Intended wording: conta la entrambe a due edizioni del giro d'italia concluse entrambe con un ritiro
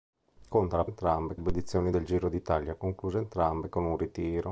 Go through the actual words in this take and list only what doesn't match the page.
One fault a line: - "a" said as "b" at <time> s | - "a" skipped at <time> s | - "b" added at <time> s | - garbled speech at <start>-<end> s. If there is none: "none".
none